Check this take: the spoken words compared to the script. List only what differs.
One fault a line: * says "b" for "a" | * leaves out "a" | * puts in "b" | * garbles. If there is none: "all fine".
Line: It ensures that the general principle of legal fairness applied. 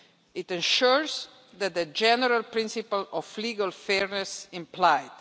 all fine